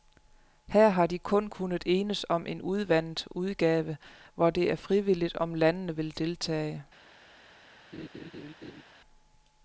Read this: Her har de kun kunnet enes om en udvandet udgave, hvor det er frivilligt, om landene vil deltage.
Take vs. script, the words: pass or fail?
pass